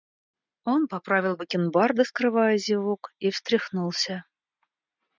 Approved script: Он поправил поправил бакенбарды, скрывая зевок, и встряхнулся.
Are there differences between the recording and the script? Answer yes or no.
yes